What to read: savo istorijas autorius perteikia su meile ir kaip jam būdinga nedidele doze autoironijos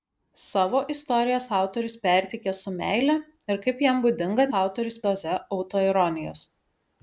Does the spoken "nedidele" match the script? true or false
false